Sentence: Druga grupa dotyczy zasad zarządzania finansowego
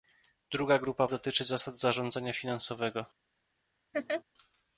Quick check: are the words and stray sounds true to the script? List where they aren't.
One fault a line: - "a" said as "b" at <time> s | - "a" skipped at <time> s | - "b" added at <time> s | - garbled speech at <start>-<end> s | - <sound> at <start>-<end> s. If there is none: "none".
- laugh at 3.9-4.2 s